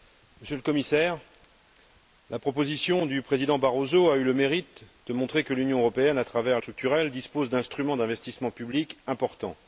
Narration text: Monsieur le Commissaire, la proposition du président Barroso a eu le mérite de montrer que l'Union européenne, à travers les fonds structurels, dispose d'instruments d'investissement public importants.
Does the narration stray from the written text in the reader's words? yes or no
yes